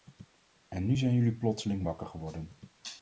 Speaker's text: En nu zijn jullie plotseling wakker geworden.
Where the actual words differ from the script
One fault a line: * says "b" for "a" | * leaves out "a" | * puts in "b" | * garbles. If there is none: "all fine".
all fine